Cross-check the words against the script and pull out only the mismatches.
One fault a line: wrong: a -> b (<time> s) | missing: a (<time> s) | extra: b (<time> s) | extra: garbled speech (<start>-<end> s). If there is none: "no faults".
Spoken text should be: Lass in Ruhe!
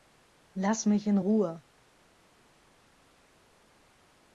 extra: mich (0.9 s)